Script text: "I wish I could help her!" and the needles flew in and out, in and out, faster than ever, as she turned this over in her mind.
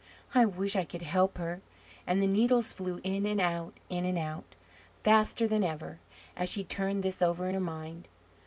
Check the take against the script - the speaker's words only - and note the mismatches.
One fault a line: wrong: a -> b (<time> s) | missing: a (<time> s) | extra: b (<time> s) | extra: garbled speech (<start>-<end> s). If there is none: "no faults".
no faults